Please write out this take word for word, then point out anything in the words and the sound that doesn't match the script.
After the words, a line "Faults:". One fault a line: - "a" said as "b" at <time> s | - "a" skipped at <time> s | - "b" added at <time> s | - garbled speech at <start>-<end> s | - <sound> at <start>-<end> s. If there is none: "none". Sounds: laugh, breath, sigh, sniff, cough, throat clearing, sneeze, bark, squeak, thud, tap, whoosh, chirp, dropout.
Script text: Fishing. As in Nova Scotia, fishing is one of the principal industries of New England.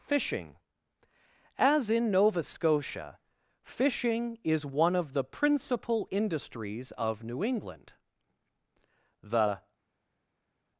Fishing. As in Nova Scotia, fishing is one of the principal industries of New England. The
Faults:
- "The" added at 9.2 s